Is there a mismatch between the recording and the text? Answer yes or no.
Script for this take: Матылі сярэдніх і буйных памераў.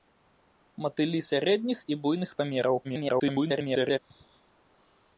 yes